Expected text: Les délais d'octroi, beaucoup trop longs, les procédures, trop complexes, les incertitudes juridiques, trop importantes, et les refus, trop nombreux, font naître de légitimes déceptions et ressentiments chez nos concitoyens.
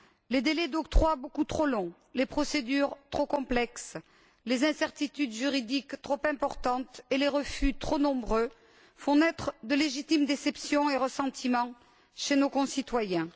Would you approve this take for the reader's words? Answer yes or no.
yes